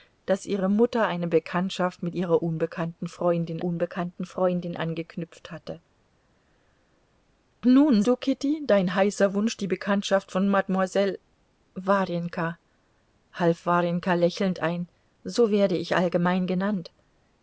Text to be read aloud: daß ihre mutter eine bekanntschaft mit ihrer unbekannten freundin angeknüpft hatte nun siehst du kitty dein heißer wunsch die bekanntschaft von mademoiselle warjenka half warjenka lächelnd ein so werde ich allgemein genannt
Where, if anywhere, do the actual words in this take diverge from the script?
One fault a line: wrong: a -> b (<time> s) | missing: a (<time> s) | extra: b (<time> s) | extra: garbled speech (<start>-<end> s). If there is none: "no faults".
extra: unbekannten freundin (3.6 s)
missing: siehst (8.0 s)